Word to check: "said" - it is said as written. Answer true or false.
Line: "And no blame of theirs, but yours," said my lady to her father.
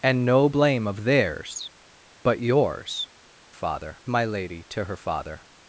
false